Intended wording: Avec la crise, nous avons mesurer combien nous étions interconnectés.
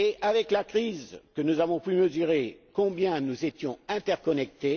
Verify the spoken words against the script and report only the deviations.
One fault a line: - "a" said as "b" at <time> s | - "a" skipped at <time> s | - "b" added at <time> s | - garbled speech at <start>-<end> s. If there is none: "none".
- "pu" added at 1.8 s